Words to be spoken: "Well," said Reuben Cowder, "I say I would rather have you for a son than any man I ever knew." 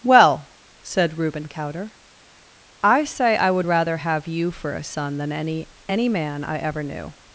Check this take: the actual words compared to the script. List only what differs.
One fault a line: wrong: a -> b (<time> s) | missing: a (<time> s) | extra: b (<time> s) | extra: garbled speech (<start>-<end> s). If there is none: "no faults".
extra: any (5.9 s)